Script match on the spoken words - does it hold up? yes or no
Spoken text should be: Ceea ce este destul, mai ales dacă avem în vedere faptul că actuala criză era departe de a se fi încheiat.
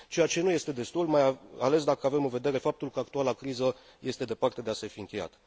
no